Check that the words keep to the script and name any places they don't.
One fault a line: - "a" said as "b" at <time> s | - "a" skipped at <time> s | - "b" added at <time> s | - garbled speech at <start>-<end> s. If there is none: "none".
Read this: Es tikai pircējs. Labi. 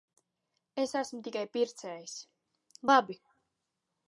- "esmu" added at 1.0 s